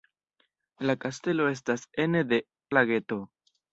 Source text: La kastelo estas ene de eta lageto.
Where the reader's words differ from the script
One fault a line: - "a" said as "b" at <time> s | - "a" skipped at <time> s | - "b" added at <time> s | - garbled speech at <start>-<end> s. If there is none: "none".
- "eta" skipped at 2.4 s